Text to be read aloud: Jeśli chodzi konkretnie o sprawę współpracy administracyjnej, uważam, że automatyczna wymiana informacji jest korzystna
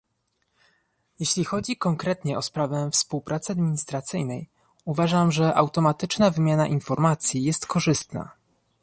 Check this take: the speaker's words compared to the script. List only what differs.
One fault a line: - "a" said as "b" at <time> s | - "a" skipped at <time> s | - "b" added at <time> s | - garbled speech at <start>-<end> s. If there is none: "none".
none